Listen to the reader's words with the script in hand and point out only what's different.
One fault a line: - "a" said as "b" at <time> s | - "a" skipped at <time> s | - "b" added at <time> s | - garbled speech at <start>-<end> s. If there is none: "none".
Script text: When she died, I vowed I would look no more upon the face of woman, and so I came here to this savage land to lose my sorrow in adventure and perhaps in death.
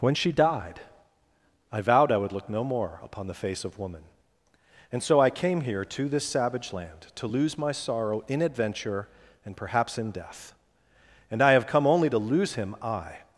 - "And I have come only to lose him I" added at 11.3 s